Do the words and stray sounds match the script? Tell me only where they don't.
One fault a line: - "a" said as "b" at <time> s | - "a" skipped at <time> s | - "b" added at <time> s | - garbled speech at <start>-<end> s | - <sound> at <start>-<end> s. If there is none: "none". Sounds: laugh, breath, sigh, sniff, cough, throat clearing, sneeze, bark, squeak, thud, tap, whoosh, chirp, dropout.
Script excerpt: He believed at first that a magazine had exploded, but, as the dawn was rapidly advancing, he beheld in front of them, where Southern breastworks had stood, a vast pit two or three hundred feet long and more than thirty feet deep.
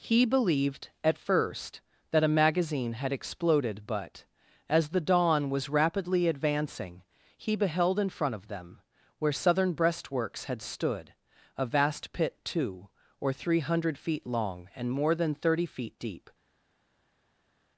none